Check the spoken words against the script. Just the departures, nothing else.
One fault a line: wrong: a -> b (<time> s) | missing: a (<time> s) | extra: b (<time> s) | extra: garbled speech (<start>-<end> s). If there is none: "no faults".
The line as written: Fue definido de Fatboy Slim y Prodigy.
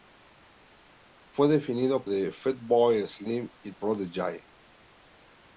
no faults